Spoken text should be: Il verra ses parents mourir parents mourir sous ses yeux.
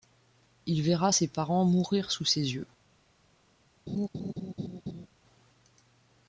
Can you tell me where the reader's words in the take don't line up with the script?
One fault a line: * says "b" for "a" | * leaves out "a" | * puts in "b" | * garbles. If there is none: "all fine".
* leaves out "parents mourir"